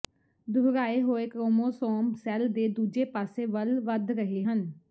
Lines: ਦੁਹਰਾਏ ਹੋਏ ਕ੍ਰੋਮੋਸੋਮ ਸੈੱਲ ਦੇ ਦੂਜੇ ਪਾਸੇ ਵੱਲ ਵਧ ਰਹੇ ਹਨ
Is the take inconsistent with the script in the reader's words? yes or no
no